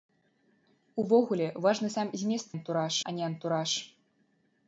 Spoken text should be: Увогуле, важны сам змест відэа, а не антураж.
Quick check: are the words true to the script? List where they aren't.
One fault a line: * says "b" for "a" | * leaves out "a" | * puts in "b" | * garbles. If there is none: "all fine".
* says "антураж" for "відэа"